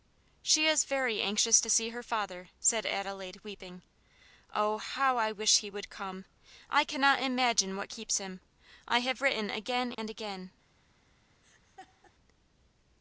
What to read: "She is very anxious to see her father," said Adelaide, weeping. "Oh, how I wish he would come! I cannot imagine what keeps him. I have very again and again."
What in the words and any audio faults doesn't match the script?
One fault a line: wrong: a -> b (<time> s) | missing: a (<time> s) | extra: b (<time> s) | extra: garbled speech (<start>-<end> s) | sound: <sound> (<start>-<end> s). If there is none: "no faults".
wrong: very -> written (9.2 s)
sound: dropout (9.9-10.0 s)
sound: laugh (11.4-12.1 s)